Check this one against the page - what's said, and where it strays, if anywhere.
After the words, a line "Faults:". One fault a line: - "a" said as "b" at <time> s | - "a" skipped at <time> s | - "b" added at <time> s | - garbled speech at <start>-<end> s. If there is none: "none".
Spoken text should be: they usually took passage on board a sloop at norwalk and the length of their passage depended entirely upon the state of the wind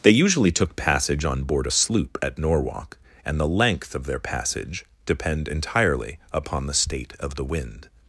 they usually took passage on board a sloop at norwalk and the length of their passage depend entirely upon the state of the wind
Faults:
- "depended" said as "depend" at 5.1 s